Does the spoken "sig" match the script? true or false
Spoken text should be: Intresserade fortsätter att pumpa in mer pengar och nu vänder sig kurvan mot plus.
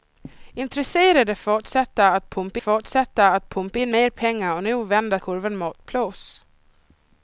false